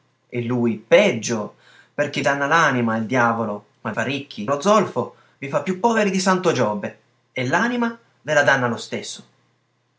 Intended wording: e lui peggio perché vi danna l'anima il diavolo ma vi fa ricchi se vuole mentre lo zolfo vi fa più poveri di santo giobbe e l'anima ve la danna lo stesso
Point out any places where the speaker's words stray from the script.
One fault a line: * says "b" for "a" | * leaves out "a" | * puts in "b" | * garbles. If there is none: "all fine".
* leaves out "vi"
* leaves out "vi"
* leaves out "se vuole mentre"